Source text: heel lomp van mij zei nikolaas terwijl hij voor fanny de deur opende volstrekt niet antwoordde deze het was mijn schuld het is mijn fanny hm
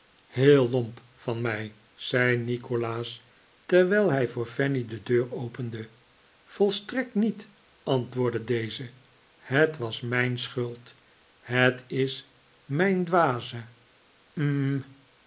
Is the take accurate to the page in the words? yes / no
no